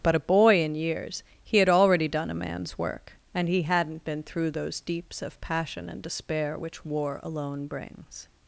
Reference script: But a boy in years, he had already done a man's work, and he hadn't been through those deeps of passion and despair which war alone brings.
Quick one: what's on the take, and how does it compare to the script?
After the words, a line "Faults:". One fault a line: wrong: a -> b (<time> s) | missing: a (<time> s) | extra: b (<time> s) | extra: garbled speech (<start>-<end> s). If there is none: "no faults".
But a boy in years, he had already done a man's work, and he hadn't been through those deeps of passion and despair which war alone brings.
Faults:
no faults